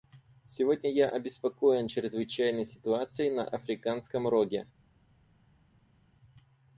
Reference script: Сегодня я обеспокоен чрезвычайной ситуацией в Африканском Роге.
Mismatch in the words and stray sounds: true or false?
true